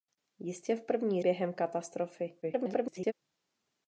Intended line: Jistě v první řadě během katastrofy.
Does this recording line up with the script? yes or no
no